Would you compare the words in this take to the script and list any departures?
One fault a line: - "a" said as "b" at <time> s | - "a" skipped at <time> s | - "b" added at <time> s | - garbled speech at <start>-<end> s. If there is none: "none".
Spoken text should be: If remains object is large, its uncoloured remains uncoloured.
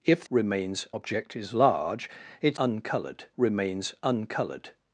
none